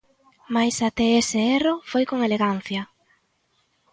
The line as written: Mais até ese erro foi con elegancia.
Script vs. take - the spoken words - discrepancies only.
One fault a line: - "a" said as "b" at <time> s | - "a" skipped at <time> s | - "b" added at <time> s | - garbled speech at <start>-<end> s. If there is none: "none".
none